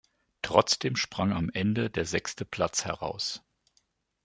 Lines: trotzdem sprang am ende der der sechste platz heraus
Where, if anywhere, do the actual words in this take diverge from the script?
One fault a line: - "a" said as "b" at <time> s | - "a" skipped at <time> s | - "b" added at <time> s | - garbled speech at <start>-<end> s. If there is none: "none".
- "der" skipped at 2.0 s